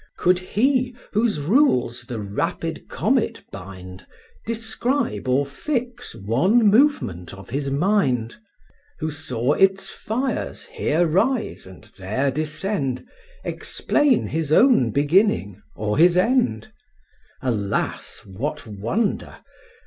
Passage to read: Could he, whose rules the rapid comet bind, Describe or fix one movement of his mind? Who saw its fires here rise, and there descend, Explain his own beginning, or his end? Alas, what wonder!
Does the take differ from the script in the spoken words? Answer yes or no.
no